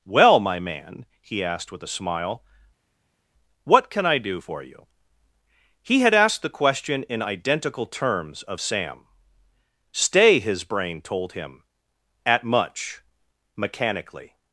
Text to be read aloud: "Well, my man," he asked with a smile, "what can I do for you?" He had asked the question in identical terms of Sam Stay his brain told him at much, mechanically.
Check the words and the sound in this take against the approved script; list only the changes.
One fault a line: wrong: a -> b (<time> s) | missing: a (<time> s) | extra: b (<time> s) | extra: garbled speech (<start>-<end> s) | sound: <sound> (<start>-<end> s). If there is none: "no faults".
no faults